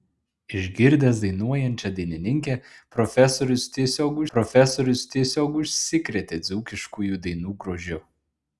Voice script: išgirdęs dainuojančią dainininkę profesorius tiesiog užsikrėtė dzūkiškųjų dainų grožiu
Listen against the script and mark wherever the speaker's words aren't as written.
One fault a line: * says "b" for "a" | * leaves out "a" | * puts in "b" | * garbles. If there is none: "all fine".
* puts in "profesorius tiesiog"